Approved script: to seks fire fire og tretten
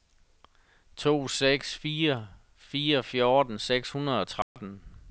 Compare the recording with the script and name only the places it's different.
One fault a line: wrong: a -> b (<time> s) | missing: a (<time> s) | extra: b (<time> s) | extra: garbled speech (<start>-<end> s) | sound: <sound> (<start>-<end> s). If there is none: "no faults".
extra: fjorten seks hundrede (3.0 s)
sound: dropout (4.4-4.6 s)